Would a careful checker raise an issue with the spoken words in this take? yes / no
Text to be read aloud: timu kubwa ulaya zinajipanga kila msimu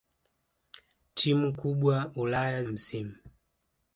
yes